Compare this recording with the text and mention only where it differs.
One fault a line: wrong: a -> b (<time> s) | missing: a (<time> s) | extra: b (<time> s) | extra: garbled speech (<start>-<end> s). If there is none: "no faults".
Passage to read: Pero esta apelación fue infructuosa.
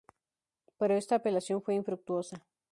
no faults